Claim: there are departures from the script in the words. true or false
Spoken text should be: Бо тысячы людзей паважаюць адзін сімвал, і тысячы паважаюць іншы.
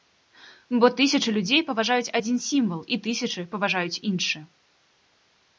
false